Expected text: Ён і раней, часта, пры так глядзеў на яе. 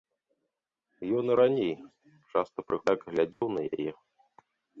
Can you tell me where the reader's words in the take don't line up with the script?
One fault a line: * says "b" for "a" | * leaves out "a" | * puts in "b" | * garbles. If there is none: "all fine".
all fine